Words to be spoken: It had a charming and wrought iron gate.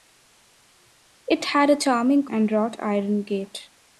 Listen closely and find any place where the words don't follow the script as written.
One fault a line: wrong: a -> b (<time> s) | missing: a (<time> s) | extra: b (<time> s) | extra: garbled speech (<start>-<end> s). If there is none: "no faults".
no faults